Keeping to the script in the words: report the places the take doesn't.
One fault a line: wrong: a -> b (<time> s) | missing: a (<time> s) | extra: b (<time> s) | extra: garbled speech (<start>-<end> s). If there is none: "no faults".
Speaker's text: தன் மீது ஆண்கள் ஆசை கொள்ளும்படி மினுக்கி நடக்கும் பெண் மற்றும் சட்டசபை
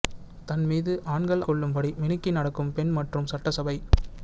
missing: ஆசை (1.4 s)